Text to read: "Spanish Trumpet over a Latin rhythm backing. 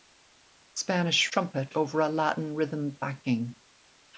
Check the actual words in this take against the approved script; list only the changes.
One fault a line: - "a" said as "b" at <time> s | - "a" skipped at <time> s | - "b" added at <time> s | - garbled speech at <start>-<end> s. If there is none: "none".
none